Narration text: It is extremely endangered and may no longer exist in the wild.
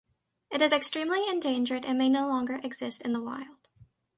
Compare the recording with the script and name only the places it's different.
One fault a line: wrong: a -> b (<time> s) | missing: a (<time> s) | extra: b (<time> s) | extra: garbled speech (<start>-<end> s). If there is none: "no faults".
no faults